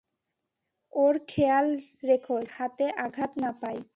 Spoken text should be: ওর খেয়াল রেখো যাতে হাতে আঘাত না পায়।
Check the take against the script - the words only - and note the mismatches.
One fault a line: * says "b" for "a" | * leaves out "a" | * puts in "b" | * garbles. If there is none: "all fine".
all fine